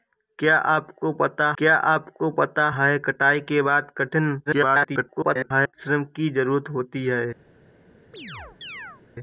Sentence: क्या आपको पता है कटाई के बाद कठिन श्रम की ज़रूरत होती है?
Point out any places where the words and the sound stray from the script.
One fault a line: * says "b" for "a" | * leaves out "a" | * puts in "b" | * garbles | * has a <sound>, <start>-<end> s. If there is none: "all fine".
* puts in "क्या आपको पता"
* garbles
* has a chirp, 8.1-9.0 s